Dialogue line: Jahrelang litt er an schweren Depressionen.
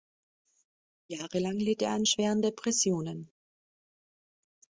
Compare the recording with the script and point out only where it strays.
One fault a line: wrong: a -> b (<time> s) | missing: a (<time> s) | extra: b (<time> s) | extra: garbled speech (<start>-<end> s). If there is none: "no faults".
no faults